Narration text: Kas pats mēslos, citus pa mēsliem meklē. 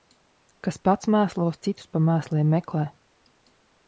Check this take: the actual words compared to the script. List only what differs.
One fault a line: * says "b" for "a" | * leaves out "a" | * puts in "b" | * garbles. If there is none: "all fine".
all fine